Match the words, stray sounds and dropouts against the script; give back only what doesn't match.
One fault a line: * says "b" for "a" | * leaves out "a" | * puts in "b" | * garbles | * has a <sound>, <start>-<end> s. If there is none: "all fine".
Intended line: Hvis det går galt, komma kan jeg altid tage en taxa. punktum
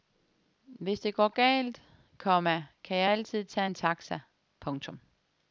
all fine